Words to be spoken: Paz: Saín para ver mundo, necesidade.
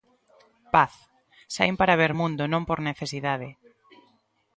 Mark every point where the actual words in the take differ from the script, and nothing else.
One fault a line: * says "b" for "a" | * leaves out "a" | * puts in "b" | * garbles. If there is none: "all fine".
* puts in "non por"